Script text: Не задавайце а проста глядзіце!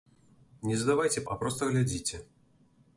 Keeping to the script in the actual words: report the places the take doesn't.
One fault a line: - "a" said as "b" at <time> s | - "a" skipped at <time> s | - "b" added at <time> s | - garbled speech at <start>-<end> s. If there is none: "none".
none